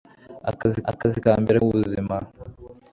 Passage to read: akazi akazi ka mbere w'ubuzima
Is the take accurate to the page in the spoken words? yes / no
yes